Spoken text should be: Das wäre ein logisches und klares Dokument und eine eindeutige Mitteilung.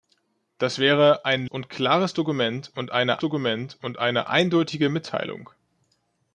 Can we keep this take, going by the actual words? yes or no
no